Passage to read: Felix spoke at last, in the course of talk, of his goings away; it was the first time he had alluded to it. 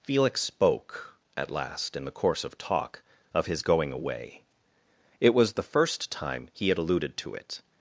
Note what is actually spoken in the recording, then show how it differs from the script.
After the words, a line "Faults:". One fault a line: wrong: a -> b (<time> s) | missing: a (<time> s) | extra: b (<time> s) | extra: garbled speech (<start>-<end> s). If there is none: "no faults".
Felix spoke at last, in the course of talk, of his going away; it was the first time he had alluded to it.
Faults:
wrong: goings -> going (3.6 s)